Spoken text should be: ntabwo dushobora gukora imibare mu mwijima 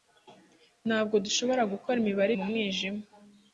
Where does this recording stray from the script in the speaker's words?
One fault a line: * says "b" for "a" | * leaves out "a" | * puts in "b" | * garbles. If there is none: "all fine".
all fine